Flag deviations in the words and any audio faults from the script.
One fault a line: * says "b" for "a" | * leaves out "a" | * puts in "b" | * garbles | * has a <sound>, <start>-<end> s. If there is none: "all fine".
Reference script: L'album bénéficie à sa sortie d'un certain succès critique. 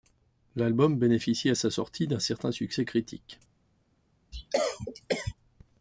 * has a cough, 4.3-5.3 s